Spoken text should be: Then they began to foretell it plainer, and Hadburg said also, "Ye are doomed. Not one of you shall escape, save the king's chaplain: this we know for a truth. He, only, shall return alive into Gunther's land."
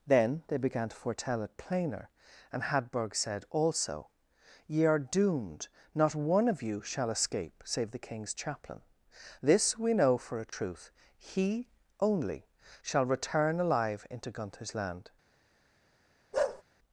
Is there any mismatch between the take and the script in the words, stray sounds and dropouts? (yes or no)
yes